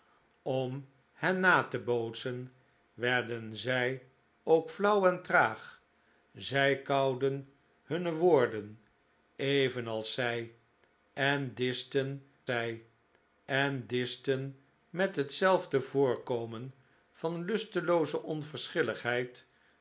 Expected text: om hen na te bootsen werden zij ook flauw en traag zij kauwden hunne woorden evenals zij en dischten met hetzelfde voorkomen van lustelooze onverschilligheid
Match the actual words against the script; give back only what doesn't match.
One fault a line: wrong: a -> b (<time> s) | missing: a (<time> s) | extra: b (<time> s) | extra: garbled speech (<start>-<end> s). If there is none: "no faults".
extra: zij en dischten (12.4 s)